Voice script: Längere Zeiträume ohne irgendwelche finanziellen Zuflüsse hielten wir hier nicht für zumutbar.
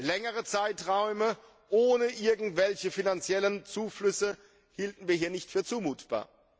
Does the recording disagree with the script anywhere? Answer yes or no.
no